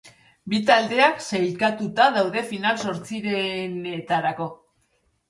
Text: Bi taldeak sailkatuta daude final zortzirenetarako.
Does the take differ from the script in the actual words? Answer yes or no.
no